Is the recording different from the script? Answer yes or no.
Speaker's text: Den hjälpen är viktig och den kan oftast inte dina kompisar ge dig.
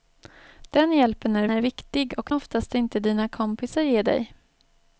yes